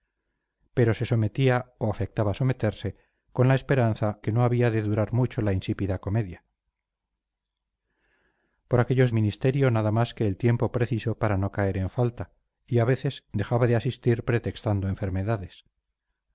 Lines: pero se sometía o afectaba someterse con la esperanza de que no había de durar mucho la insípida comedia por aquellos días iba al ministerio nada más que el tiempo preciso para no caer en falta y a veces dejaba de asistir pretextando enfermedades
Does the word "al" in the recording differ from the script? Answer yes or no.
yes